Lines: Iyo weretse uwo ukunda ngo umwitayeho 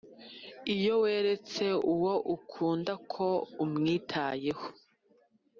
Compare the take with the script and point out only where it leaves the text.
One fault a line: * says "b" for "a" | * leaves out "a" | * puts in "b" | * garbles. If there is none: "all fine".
* says "ko" for "ngo"